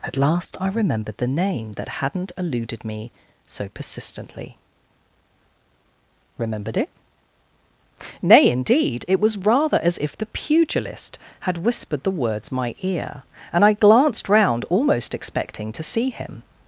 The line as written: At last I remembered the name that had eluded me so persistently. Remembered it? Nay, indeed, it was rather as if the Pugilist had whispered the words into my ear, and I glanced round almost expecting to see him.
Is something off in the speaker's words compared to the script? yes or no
yes